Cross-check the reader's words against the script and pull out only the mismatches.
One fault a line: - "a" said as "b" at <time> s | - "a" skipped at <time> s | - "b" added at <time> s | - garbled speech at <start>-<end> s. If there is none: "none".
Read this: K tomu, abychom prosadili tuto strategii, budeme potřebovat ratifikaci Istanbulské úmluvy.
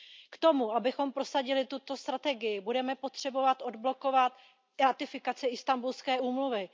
- "odblokovat" added at 3.6 s